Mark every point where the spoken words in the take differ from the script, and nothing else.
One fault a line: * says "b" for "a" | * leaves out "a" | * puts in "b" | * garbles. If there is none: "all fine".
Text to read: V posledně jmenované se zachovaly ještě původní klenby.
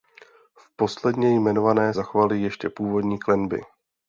* leaves out "se"